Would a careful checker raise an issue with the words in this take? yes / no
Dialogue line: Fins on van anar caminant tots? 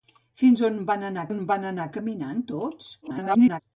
yes